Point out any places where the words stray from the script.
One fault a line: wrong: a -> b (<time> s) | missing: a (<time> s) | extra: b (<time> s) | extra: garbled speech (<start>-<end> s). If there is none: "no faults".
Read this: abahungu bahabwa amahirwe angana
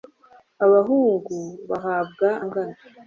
missing: amahirwe (2.3 s)